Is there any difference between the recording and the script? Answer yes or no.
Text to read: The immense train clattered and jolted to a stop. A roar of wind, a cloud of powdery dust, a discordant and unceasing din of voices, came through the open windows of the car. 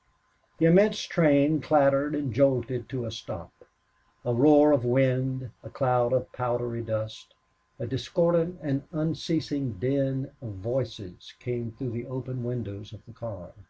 no